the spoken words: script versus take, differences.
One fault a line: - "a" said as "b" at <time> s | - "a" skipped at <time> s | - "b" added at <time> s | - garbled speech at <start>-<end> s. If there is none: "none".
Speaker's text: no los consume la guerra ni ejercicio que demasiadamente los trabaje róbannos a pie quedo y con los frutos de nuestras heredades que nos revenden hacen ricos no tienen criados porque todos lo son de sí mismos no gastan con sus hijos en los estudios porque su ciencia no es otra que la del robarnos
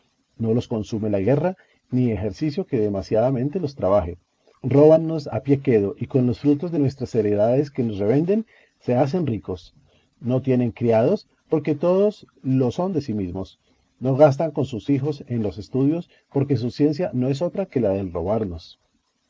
- "se" added at 8.8 s